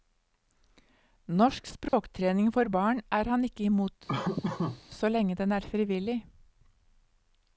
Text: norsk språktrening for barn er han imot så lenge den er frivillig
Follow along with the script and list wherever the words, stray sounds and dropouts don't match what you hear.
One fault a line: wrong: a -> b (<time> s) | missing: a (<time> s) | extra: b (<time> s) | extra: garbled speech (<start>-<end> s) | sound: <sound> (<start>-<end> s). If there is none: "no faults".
sound: dropout (1.9-1.9 s)
extra: ikke (3.5 s)
sound: laugh (4.1-4.8 s)